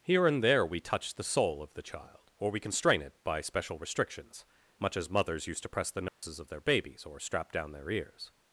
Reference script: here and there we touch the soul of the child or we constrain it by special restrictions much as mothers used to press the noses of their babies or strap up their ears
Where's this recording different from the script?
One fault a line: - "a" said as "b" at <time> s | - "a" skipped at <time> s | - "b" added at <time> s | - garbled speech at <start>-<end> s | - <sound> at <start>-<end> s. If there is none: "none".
- dropout at 6.1-6.2 s
- "up" said as "down" at 7.5 s